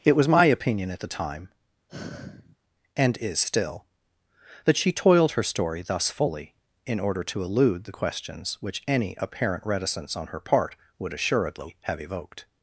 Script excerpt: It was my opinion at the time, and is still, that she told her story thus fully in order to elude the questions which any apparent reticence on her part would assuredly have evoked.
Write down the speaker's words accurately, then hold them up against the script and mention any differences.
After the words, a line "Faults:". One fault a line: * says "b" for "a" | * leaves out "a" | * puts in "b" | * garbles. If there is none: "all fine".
It was my opinion at the time, and is still, that she toiled her story thus fully in order to elude the questions which any apparent reticence on her part would assuredly have evoked.
Faults:
* says "toiled" for "told"